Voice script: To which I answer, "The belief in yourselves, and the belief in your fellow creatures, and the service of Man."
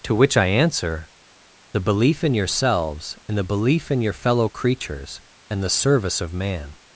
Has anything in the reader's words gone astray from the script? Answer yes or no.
no